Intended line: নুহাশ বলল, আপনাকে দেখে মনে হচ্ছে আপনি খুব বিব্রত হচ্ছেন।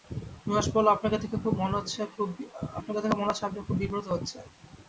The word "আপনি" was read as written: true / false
true